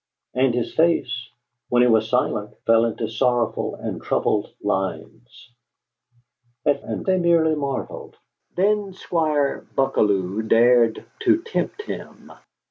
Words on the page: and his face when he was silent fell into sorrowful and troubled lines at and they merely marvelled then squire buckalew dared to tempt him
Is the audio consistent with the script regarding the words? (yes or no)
yes